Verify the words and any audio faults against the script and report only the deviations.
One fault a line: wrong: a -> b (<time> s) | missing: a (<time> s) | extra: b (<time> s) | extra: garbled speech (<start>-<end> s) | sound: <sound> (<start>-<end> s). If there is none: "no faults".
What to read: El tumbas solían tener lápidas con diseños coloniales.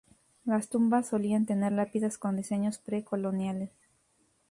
wrong: El -> Las (0.5 s)
extra: pre (2.8 s)